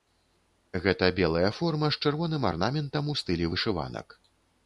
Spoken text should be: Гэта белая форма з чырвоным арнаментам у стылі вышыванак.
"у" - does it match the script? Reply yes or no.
yes